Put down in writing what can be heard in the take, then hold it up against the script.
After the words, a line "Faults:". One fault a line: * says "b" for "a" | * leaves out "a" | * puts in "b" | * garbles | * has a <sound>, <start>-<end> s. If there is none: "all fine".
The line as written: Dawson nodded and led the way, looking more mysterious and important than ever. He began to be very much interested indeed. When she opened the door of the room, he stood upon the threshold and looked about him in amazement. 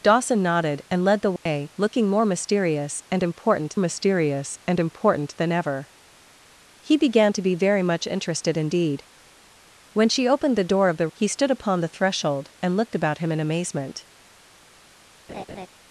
Dawson nodded and led the way, looking more mysterious and important mysterious and important than ever. He began to be very much interested indeed. When she opened the door of the he stood upon the threshold and looked about him in amazement.
Faults:
* has a dropout, 1.4-1.5 s
* puts in "mysterious and important"
* leaves out "room"
* has a laugh, 15.3-15.7 s